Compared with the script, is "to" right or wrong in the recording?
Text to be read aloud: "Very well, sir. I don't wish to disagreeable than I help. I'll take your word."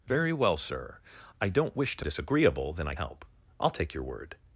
right